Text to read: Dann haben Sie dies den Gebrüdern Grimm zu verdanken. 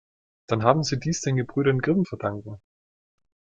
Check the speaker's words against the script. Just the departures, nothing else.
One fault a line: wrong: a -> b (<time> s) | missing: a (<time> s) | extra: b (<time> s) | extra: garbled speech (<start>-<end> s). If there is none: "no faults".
missing: zu (2.1 s)